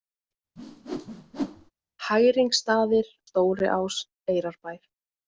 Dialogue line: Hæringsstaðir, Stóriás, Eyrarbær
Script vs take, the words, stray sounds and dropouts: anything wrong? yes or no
yes